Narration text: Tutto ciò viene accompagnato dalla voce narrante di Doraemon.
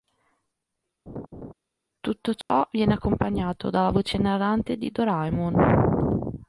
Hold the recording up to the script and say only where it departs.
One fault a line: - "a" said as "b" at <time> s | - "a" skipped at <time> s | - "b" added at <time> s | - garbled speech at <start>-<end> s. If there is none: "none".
none